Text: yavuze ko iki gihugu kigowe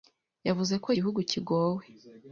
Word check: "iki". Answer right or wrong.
wrong